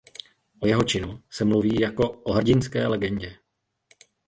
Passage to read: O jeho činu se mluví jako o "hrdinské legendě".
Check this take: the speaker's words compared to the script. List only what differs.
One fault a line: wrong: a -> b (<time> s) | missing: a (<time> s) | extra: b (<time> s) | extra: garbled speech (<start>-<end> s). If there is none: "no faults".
no faults